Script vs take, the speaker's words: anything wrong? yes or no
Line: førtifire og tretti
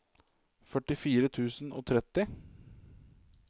yes